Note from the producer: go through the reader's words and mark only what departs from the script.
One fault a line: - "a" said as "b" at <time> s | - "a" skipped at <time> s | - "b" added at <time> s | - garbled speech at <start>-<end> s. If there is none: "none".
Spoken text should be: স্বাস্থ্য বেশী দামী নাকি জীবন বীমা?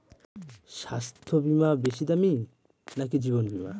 - "বীমা" added at 1.4 s